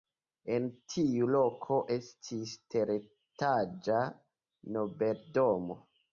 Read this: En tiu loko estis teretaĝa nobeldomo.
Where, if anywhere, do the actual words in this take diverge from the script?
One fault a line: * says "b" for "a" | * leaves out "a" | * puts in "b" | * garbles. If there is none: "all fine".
all fine